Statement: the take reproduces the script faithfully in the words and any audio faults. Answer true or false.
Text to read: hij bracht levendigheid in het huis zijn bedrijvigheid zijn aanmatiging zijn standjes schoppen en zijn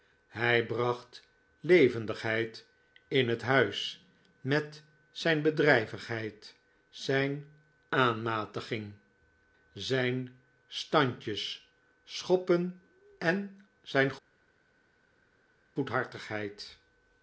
false